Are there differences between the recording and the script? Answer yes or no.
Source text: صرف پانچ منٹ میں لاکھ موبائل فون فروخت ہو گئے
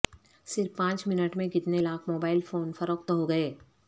yes